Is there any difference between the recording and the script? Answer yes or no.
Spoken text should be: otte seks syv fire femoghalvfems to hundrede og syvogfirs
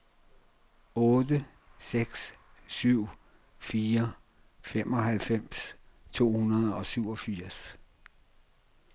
no